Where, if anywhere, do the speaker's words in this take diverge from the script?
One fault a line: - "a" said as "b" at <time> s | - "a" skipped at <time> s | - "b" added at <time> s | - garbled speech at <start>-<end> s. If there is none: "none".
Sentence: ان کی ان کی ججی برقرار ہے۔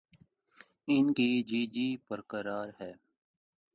- "ان کی" skipped at 1.3 s